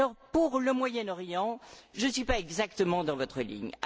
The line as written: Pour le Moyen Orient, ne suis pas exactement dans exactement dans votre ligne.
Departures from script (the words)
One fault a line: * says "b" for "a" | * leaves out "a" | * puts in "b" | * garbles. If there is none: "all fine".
* puts in "je"
* leaves out "exactement dans"